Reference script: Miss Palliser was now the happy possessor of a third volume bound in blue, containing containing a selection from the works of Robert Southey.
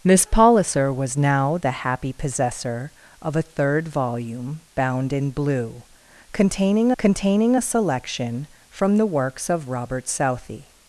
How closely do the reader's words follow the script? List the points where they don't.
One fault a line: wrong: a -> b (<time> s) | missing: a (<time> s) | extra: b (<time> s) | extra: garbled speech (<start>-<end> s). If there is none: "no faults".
no faults